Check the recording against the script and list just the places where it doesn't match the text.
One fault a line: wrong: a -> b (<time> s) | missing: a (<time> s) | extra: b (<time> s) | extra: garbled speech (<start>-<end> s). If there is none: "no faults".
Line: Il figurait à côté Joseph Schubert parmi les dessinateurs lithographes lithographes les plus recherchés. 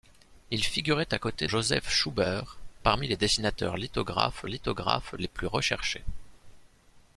no faults